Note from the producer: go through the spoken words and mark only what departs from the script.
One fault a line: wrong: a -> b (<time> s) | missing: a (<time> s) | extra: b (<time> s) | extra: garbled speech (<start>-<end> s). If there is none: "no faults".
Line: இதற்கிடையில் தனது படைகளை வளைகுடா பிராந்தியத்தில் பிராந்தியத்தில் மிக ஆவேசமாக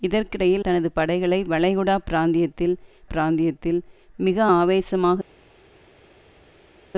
no faults